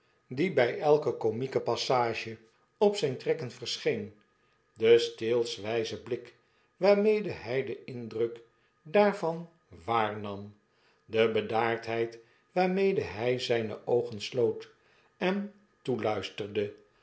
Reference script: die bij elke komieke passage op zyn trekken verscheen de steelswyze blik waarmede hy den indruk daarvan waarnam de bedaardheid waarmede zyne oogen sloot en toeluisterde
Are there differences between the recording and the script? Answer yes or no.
yes